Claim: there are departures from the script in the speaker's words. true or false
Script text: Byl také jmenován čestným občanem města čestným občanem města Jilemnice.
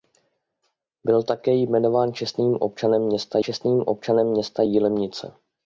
false